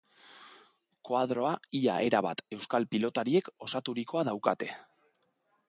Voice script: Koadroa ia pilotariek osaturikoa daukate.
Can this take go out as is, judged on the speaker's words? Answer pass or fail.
fail